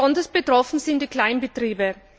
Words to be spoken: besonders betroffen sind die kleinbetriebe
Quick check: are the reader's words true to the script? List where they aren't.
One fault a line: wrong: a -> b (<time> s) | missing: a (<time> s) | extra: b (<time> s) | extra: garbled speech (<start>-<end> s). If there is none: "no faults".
no faults